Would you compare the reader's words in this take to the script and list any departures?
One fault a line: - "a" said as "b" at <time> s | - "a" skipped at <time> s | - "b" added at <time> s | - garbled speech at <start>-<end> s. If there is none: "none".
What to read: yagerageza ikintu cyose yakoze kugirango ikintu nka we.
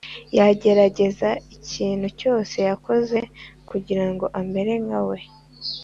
- "ikintu" said as "amere" at 4.4 s